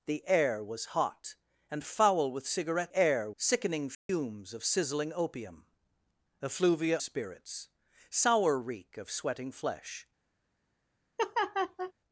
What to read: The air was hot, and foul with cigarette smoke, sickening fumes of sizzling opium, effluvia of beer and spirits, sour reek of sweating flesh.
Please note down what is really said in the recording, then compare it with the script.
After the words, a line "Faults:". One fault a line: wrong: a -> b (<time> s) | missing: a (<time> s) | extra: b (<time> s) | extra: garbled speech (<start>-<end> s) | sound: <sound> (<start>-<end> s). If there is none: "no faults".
The air was hot, and foul with cigarette air, sickening fumes of sizzling opium, effluvia spirits, sour reek of sweating flesh.
Faults:
wrong: smoke -> air (2.9 s)
sound: dropout (3.9-4.1 s)
missing: of beer and (7.0 s)
sound: laugh (11.2-11.9 s)